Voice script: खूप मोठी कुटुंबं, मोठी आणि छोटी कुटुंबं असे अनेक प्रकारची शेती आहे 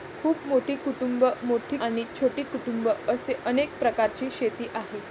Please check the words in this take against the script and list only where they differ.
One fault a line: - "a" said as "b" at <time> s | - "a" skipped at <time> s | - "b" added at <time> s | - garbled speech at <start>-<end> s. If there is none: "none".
none